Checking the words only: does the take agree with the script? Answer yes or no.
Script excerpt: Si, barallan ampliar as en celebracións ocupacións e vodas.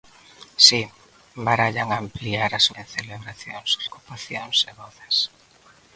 yes